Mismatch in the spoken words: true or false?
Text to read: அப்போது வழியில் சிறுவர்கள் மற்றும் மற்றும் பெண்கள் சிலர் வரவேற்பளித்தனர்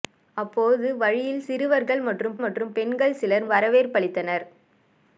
false